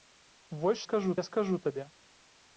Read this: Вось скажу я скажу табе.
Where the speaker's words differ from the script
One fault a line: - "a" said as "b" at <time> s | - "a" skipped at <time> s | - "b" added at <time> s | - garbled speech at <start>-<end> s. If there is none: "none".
none